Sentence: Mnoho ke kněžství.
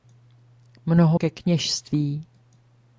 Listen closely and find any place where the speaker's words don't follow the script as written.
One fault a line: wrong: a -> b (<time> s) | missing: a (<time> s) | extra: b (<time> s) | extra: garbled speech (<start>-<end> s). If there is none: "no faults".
no faults